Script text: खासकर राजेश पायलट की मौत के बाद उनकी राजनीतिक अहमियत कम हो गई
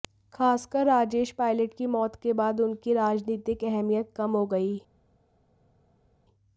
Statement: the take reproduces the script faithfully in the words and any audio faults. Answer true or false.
true